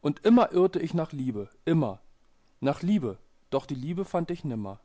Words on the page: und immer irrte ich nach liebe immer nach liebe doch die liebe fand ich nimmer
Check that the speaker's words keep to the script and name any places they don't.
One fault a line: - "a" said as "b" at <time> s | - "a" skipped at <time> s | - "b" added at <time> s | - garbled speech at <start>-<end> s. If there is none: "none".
none